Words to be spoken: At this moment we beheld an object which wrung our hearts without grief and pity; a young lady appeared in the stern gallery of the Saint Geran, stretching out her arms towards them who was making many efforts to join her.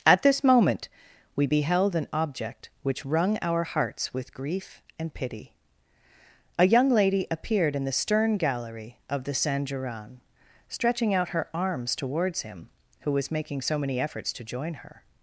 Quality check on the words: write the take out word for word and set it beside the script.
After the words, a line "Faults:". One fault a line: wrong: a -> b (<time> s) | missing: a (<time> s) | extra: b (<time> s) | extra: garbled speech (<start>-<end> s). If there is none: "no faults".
At this moment we beheld an object which wrung our hearts with grief and pity; a young lady appeared in the stern gallery of the Saint Geran, stretching out her arms towards him who was making so many efforts to join her.
Faults:
wrong: without -> with (4.1 s)
wrong: them -> him (12.4 s)
extra: so (13.6 s)